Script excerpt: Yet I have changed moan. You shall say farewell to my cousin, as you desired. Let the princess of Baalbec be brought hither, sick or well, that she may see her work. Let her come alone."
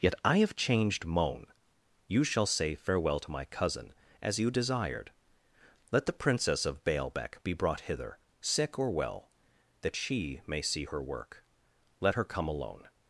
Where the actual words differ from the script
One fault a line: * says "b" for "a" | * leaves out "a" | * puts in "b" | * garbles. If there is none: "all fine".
all fine